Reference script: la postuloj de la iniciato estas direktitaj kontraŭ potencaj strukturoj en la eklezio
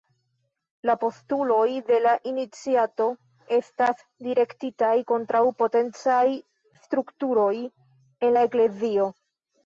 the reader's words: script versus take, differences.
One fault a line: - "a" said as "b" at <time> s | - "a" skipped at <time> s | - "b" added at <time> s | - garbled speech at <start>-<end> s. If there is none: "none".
none